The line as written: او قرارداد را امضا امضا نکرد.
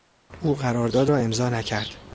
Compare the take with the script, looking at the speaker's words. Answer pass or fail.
fail